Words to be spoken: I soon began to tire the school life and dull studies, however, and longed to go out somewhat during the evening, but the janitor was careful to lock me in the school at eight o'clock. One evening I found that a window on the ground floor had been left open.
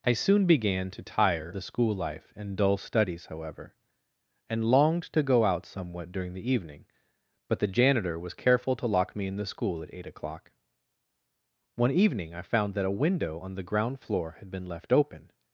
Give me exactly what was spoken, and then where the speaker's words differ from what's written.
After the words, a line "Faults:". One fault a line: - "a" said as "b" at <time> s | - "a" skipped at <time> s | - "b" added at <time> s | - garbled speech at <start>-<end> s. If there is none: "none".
I soon began to tire the school life and dull studies, however, and longed to go out somewhat during the evening, but the janitor was careful to lock me in the school at eight o'clock. One evening I found that a window on the ground floor had been left open.
Faults:
none